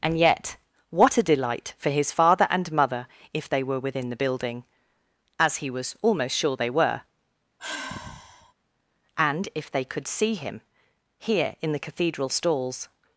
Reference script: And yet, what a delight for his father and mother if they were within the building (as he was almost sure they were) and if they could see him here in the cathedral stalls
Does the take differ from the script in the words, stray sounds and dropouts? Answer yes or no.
yes